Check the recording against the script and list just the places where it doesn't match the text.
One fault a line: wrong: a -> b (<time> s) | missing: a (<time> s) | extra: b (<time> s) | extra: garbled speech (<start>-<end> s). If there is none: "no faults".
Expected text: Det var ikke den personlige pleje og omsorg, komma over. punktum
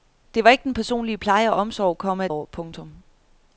no faults